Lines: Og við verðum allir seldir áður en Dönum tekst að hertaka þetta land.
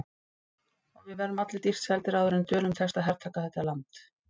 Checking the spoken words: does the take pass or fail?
fail